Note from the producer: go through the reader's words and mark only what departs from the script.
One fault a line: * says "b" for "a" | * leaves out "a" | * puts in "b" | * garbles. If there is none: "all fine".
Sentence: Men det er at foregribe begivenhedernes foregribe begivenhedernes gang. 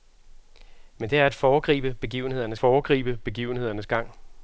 all fine